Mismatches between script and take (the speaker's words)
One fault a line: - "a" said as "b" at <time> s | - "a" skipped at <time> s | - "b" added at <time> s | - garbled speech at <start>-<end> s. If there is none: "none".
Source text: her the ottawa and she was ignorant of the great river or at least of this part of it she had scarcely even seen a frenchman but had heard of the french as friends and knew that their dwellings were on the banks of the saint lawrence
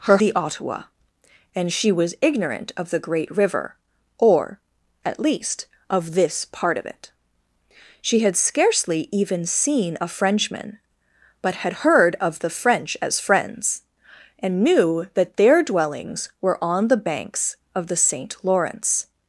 none